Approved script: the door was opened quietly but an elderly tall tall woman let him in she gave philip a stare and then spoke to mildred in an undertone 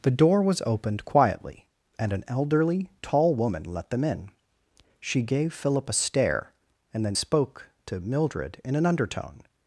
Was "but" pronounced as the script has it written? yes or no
no